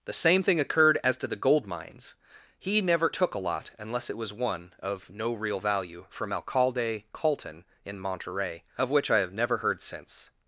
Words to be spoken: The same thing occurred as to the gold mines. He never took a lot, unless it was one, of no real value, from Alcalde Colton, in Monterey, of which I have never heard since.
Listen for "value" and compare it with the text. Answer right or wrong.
right